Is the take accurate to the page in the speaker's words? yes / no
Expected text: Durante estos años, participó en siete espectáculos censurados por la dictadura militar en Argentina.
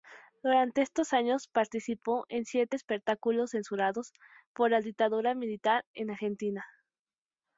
yes